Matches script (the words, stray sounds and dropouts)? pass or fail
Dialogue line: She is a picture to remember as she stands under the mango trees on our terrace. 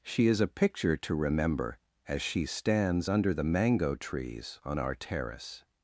pass